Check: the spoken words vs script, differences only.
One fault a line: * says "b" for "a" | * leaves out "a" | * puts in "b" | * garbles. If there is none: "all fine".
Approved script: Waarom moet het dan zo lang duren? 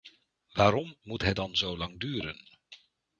all fine